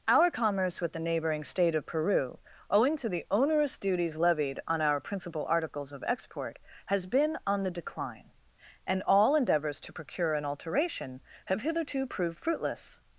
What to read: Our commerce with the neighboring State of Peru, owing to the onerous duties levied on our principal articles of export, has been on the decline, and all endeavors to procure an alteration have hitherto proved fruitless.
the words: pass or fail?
pass